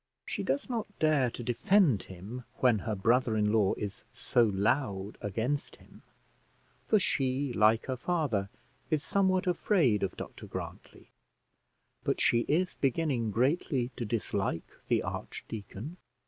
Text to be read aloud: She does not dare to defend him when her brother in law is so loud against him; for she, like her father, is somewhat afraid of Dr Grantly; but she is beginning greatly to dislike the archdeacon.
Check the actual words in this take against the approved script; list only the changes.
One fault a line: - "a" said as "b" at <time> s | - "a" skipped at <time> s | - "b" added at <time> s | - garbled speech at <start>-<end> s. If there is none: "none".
none